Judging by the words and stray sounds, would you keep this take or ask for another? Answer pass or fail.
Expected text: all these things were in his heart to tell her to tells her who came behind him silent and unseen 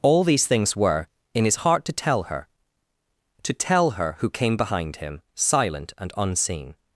fail